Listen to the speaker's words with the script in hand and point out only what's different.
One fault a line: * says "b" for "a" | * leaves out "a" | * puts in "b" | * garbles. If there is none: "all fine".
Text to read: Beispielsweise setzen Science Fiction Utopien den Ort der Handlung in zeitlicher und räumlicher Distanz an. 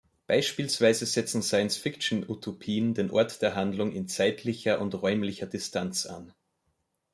all fine